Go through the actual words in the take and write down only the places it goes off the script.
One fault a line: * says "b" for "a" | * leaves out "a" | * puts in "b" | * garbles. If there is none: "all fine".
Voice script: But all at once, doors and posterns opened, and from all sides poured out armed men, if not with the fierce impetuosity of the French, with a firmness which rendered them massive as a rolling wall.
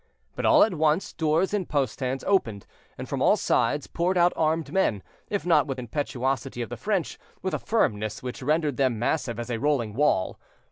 * leaves out "the fierce"